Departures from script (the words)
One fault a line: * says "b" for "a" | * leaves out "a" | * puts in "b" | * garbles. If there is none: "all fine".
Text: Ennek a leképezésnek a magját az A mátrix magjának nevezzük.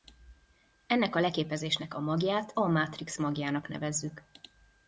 * leaves out "az"